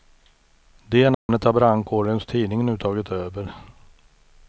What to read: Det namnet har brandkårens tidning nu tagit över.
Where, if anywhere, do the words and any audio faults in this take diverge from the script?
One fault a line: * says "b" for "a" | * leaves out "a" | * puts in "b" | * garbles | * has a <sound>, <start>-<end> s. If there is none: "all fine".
* has a dropout, 1.1-1.3 s